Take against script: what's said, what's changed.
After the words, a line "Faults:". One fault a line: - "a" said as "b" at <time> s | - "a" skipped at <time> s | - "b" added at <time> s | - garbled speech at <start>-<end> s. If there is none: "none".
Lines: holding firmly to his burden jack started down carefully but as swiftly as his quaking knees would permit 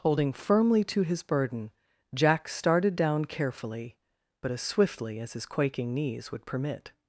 holding firmly to his burden jack started down carefully but as swiftly as his quaking knees would permit
Faults:
none